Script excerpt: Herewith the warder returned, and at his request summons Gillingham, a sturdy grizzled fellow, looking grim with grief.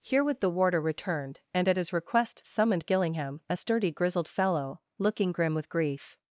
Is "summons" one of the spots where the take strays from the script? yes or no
yes